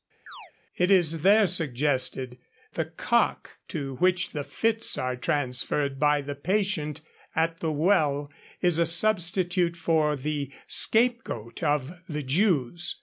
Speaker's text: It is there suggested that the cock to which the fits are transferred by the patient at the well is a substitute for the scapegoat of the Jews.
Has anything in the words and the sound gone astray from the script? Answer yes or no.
yes